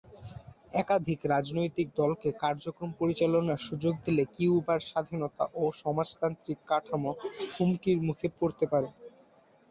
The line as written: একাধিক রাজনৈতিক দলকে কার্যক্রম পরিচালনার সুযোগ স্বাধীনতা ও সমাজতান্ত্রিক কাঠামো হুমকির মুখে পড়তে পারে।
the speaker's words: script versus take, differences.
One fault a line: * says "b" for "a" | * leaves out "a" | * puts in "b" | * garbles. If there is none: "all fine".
* puts in "দিলে কিউবার"